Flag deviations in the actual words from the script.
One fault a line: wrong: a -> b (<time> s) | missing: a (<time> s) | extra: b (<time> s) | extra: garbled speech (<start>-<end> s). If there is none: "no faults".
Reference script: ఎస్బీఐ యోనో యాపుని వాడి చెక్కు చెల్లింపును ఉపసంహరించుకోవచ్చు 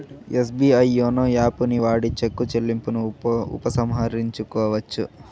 no faults